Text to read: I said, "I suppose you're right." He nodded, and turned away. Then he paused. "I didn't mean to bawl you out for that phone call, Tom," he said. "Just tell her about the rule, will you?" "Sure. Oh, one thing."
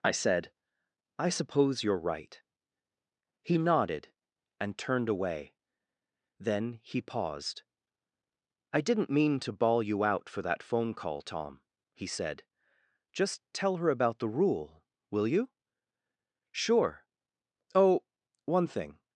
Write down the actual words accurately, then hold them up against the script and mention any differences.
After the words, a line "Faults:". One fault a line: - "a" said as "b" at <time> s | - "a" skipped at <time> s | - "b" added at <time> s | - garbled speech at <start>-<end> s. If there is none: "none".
I said, "I suppose you're right." He nodded, and turned away. Then he paused. "I didn't mean to bawl you out for that phone call, Tom," he said. "Just tell her about the rule, will you?" "Sure. Oh, one thing."
Faults:
none